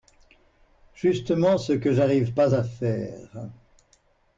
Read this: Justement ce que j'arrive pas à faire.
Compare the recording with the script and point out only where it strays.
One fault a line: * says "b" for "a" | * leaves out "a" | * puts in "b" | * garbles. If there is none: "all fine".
all fine